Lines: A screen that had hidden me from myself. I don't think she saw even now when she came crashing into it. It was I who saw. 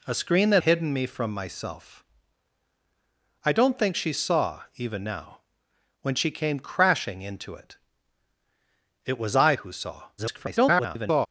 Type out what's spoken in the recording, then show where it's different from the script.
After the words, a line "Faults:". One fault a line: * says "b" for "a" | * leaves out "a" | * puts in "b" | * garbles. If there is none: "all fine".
A screen that hidden me from myself. I don't think she saw even now when she came crashing into it. It was I who saw. [garbled]
Faults:
* leaves out "had"
* garbles